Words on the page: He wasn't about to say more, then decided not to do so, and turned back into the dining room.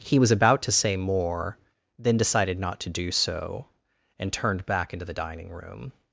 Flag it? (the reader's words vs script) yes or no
yes